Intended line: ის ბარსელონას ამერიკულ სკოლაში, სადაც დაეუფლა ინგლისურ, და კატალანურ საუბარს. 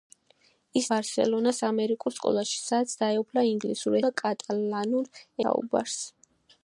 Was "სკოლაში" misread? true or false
false